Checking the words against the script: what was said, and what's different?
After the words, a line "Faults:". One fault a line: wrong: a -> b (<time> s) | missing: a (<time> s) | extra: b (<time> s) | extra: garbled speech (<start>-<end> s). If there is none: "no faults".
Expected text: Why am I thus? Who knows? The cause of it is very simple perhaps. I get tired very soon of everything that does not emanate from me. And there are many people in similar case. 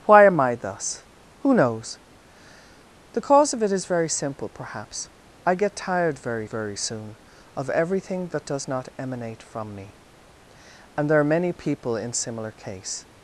Why am I thus? Who knows? The cause of it is very simple perhaps. I get tired very very soon of everything that does not emanate from me. And there are many people in similar case.
Faults:
extra: very (6.4 s)